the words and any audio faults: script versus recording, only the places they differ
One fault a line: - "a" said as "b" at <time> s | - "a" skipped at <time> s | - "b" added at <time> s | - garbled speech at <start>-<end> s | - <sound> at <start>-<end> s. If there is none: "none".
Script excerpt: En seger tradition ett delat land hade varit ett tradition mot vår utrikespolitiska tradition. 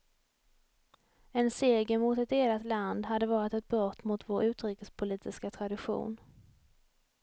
- "tradition" said as "mot" at 2.0 s
- "tradition" said as "brott" at 3.7 s